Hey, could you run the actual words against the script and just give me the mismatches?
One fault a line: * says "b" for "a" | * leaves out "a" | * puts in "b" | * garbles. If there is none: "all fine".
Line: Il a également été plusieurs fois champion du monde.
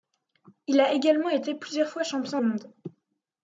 * leaves out "du"